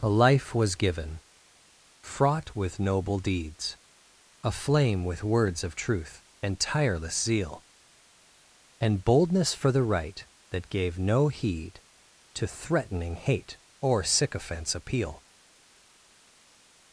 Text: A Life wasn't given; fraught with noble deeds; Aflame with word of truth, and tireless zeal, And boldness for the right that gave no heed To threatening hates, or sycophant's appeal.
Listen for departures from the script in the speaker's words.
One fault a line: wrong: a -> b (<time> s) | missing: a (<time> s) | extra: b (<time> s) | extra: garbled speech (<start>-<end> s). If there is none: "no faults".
wrong: wasn't -> was (0.6 s)
wrong: word -> words (5.2 s)
wrong: hates -> hate (13.2 s)